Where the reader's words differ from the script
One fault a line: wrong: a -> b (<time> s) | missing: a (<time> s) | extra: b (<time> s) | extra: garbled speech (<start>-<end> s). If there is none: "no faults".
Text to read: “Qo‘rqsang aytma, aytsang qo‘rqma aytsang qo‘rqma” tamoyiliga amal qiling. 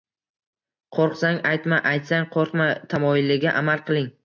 missing: aytsang qo‘rqma (2.7 s)